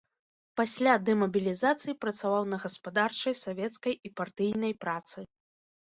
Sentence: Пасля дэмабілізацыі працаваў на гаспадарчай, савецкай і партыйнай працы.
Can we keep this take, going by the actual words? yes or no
yes